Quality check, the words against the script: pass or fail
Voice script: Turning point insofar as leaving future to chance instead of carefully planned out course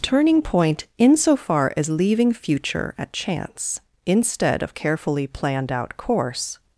fail